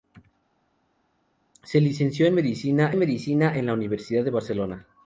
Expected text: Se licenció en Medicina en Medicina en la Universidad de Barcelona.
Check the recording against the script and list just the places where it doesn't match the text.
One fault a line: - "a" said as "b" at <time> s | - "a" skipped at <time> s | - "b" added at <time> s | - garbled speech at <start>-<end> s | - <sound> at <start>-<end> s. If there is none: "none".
none